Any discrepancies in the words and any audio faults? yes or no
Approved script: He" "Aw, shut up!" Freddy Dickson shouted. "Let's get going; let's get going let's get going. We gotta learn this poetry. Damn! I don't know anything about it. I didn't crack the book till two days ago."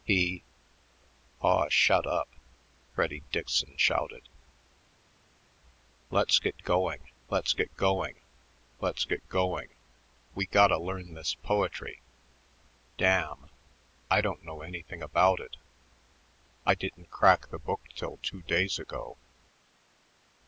no